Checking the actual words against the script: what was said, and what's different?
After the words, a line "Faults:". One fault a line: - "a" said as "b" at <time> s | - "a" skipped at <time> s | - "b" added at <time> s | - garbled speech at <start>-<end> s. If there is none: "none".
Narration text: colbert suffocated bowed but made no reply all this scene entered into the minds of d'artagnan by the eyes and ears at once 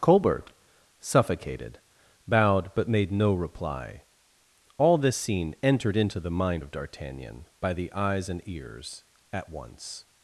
colbert suffocated bowed but made no reply all this scene entered into the mind of d'artagnan by the eyes and ears at once
Faults:
- "minds" said as "mind" at 6.3 s